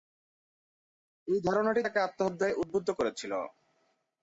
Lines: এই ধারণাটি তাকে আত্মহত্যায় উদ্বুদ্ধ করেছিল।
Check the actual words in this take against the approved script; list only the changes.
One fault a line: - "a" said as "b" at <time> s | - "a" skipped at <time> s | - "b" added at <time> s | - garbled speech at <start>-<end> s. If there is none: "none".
none